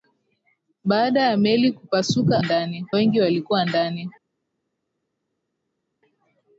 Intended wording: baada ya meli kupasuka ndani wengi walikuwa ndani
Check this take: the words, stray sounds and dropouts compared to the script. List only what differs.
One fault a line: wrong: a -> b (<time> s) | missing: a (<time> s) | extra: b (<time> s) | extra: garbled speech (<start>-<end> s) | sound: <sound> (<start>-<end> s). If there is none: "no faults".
no faults